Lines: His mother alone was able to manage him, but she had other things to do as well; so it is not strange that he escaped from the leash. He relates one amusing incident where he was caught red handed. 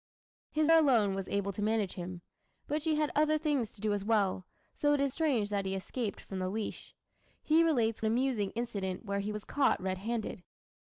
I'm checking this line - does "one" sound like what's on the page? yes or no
no